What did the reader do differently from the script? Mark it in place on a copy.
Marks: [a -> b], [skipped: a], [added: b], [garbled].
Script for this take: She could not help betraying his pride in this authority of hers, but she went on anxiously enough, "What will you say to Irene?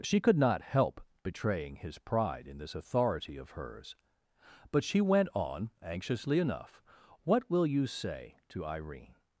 She could not help betraying his pride in this authority of hers, but she went on anxiously enough, "What will you say to Irene?